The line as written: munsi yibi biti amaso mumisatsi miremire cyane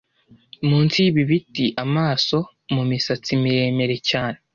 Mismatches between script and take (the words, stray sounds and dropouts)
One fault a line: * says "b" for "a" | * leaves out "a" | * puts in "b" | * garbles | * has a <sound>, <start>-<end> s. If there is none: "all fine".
all fine